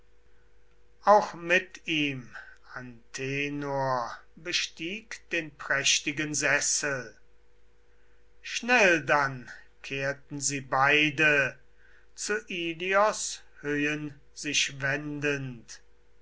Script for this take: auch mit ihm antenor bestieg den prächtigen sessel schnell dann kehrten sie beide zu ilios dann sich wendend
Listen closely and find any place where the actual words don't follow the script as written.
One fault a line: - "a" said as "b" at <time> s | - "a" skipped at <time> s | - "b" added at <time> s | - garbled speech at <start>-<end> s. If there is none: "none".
- "dann" said as "höhen" at 13.6 s